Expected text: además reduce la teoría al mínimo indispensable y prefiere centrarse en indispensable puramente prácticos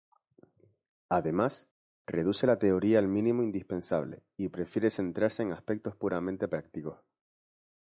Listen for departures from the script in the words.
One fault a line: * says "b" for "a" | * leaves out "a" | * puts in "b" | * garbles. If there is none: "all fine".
* says "aspectos" for "indispensable"